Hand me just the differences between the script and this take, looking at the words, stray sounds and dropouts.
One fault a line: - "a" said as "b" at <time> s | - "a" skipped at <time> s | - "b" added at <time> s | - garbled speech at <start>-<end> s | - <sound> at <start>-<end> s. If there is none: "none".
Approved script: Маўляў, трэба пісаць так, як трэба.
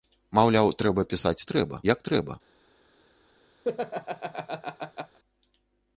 - "так" said as "трэба" at 1.5 s
- laugh at 3.6-5.2 s